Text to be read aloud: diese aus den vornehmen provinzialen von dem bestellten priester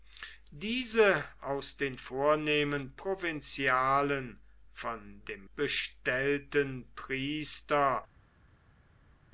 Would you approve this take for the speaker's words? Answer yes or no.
yes